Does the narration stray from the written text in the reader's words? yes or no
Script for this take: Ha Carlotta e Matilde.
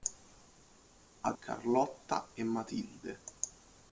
no